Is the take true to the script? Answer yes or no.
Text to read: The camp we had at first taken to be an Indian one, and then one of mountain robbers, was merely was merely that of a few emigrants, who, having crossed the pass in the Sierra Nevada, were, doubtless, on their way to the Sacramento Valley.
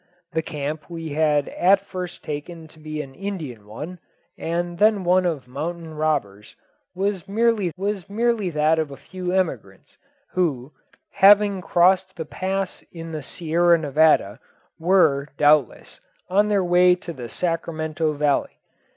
yes